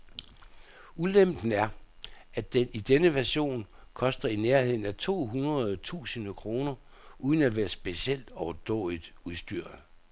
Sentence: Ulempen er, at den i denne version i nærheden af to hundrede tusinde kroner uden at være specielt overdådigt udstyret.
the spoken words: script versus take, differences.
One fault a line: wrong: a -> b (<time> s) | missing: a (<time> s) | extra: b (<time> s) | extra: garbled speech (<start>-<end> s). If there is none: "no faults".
extra: koster (3.9 s)